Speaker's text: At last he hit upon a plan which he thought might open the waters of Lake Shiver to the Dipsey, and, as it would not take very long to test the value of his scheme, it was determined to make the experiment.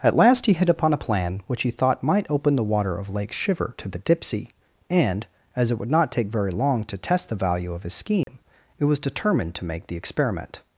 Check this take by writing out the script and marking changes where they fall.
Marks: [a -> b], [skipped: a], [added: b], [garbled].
At last he hit upon a plan which he thought might open the [waters -> water] of Lake Shiver to the Dipsey, and, as it would not take very long to test the value of his scheme, it was determined to make the experiment.